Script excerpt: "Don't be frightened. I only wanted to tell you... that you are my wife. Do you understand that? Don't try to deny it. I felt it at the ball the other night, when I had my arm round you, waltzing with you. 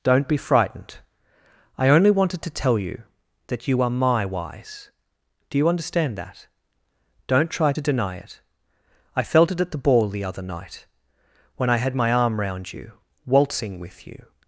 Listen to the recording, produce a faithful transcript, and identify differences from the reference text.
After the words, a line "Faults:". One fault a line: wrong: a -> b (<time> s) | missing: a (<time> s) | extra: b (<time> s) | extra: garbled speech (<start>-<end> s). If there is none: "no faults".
"Don't be frightened. I only wanted to tell you... that you are my wise. Do you understand that? Don't try to deny it. I felt it at the ball the other night, when I had my arm round you, waltzing with you.
Faults:
wrong: wife -> wise (4.2 s)